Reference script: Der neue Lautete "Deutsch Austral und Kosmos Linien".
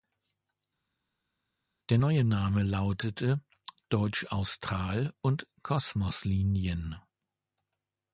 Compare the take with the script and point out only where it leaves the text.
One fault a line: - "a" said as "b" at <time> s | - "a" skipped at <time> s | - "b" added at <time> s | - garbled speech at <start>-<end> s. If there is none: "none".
- "Name" added at 2.2 s